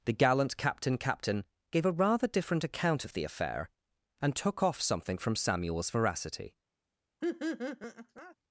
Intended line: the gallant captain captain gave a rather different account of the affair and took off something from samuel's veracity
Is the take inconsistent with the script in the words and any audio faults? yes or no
yes